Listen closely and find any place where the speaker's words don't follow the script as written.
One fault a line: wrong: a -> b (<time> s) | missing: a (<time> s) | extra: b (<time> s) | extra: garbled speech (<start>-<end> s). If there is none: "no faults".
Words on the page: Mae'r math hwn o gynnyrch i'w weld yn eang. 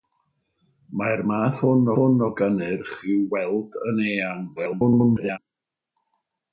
extra: hwn (2.0 s)
extra: garbled speech (4.6-5.4 s)